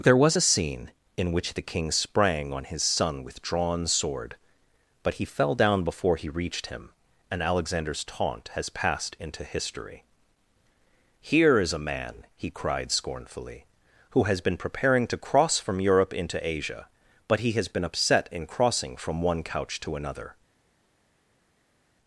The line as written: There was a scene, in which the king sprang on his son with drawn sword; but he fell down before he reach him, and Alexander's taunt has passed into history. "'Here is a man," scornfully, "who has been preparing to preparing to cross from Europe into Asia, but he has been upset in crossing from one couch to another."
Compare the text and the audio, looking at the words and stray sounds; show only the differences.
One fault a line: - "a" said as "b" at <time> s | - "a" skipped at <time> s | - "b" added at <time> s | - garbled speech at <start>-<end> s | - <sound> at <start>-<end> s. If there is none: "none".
- "reach" said as "reached" at 6.3 s
- "he cried" added at 12.4 s
- "preparing to" skipped at 15.2 s